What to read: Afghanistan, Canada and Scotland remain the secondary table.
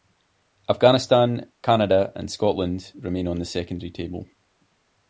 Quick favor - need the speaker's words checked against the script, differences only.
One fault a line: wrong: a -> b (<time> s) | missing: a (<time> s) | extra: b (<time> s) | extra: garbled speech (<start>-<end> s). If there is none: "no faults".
extra: on (3.3 s)